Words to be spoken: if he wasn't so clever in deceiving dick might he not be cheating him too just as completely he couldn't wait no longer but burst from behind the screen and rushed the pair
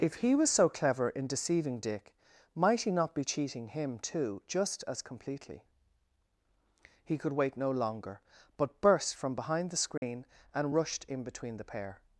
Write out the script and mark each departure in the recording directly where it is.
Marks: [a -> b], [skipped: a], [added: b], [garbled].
if he [wasn't -> was] so clever in deceiving dick might he not be cheating him too just as completely he [couldn't -> could] wait no longer but burst from behind the screen and rushed [added: in between] the pair